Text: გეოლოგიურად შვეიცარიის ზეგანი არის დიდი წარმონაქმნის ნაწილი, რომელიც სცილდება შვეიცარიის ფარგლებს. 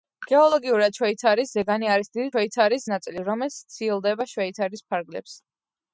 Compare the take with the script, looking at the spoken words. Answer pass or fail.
fail